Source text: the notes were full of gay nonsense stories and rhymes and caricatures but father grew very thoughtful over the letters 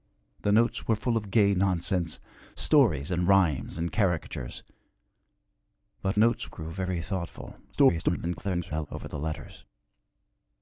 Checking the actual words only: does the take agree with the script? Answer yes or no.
no